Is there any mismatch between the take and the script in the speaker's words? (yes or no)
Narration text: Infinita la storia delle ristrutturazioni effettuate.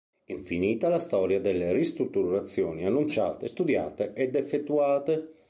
yes